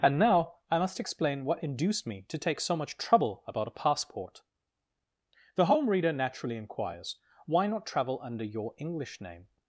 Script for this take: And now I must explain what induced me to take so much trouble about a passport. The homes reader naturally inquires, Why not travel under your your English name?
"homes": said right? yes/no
no